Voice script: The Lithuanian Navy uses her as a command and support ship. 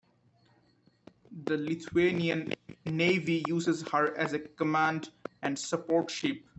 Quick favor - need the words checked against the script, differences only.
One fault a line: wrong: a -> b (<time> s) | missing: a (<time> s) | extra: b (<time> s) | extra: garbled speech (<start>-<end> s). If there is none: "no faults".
no faults